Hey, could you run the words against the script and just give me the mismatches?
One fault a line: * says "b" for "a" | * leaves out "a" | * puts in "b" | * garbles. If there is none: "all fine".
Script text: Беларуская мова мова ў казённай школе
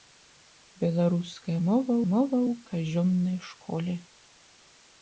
all fine